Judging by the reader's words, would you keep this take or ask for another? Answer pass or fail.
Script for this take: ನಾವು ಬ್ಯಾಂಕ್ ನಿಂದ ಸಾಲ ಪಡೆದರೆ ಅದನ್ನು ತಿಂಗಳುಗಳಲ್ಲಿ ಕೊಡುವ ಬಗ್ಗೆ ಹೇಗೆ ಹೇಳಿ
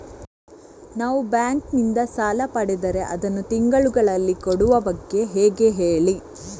pass